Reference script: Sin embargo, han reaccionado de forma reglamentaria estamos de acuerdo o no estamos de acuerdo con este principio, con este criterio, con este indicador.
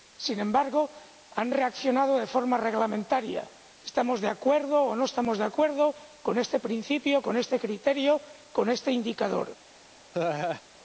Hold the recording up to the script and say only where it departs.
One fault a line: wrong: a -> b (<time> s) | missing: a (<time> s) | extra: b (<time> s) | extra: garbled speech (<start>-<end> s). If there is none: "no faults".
no faults